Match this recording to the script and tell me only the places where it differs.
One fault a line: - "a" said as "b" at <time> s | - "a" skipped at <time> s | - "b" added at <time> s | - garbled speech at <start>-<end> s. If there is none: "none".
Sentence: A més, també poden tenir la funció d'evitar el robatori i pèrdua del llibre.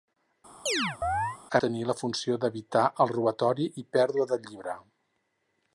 - "més també poden" skipped at 1.6 s